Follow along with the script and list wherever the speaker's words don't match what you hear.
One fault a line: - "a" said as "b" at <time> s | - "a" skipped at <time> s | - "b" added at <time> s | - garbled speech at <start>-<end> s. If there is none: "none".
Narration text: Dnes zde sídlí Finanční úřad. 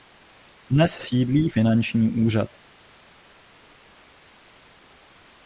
- "zde" skipped at 1.0 s